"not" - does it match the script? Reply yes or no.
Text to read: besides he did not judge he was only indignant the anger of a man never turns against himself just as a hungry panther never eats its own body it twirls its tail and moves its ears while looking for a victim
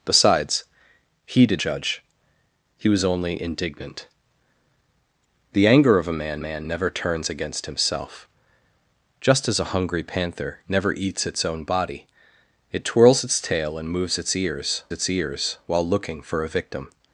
no